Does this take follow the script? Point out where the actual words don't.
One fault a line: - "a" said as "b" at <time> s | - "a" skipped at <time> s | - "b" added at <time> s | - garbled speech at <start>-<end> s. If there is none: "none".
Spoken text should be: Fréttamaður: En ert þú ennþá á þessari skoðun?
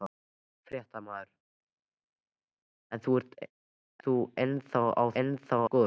- "ert" skipped at 3.0 s
- "þessari" said as "ennþá" at 5.2 s